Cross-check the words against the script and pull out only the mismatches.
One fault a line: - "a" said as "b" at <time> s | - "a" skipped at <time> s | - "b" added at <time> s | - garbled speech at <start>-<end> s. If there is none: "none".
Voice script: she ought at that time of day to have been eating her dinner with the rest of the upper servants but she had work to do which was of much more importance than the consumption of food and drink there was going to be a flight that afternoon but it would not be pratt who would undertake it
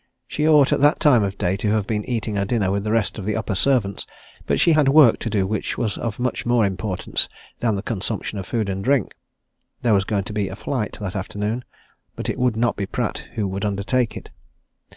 none